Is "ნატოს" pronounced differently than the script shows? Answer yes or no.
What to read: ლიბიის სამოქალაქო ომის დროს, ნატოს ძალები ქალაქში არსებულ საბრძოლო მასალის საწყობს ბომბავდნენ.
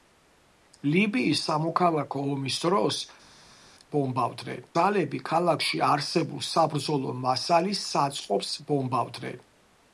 yes